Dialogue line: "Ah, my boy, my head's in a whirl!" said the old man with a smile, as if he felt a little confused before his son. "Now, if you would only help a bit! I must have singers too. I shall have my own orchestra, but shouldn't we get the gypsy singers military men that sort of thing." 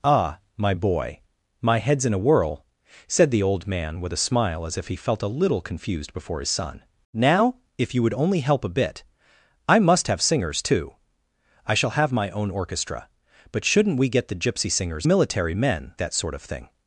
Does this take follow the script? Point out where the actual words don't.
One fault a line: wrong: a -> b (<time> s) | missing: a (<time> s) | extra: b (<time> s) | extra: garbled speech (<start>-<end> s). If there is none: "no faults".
no faults